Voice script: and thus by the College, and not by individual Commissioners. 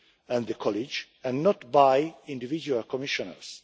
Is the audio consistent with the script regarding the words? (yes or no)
no